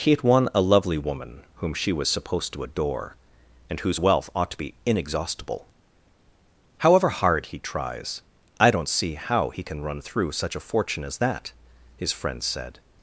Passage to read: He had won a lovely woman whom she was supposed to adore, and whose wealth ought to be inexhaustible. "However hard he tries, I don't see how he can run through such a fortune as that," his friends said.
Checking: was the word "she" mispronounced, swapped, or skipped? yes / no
no